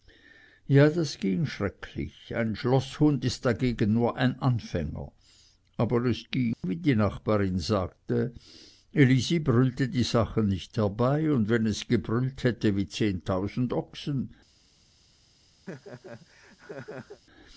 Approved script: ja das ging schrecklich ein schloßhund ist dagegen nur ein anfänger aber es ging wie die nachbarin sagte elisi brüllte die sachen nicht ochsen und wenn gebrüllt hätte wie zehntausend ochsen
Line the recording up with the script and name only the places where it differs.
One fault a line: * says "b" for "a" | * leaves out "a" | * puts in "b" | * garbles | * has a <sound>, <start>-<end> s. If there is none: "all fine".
* has a dropout, 6.5-6.6 s
* says "herbei" for "ochsen"
* puts in "es"
* has a laugh, 15.7-17.2 s